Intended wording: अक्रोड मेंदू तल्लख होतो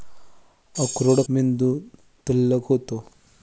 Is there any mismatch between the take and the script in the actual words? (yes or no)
no